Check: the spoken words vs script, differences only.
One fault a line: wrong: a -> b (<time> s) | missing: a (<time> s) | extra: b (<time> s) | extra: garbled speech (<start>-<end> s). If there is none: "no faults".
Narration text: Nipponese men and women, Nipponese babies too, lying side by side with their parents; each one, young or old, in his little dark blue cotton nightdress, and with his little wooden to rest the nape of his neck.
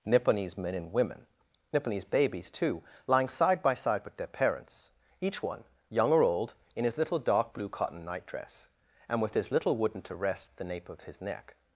no faults